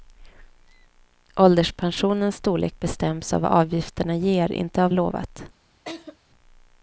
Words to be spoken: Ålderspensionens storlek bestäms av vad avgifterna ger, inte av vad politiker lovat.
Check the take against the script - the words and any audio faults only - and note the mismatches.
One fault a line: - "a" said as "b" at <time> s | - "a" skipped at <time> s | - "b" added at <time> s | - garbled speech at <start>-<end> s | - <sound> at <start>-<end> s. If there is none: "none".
- "vad politiker" skipped at 4.9 s
- laugh at 5.8-6.2 s